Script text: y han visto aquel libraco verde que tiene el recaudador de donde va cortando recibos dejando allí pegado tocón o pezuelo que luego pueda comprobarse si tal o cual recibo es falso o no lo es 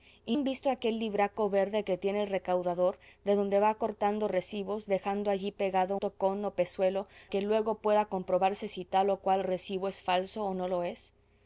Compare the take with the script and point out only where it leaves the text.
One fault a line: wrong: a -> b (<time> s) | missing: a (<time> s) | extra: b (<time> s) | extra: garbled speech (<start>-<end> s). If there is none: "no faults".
no faults